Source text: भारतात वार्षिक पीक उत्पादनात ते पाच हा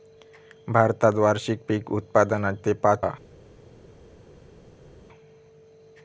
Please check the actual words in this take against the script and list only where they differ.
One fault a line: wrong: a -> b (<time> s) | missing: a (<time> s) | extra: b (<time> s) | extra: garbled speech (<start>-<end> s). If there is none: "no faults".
no faults